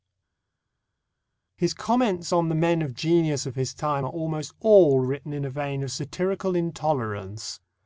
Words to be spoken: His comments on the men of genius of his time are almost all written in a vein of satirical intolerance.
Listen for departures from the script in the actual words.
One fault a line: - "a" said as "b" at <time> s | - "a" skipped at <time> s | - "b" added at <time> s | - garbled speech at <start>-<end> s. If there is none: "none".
none